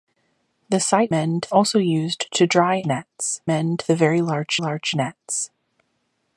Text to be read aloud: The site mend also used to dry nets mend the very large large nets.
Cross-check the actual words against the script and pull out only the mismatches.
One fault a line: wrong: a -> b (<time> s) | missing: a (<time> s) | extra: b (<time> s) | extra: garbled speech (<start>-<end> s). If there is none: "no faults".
no faults